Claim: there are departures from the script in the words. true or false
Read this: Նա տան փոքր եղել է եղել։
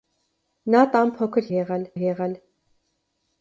false